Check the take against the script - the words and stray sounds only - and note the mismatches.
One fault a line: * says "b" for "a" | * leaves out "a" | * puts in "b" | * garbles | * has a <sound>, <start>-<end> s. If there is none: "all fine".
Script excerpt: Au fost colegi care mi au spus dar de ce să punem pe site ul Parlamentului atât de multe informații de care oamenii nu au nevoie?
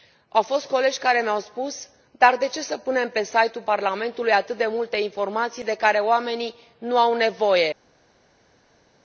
all fine